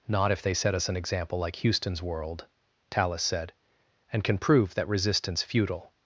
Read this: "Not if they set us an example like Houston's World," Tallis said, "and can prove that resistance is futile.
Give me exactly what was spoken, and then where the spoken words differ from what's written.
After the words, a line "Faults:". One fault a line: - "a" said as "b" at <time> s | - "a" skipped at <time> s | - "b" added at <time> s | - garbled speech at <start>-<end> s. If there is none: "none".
"Not if they set us an example like Houston's World," Tallis said, "and can prove that resistance futile.
Faults:
- "is" skipped at 5.4 s